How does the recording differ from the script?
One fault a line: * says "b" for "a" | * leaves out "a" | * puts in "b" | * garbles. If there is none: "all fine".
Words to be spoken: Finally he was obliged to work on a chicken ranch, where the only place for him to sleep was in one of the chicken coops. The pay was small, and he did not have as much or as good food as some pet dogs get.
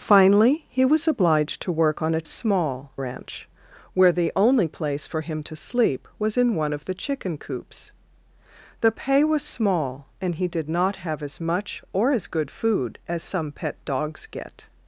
* says "small" for "chicken"